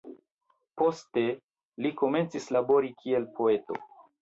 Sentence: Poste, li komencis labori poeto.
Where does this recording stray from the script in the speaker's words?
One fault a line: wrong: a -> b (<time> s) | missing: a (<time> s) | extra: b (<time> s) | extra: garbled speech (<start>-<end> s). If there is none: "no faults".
extra: kiel (3.0 s)